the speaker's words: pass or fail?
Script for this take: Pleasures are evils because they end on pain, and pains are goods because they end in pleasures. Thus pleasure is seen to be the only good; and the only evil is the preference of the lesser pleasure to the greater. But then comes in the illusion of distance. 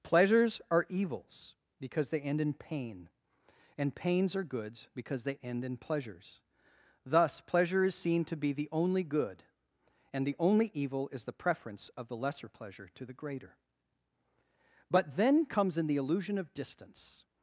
fail